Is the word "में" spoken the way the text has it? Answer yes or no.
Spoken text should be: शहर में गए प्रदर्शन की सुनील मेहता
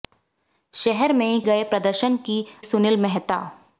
yes